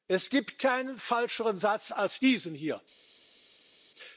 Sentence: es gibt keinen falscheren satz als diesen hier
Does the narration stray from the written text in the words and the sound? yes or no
no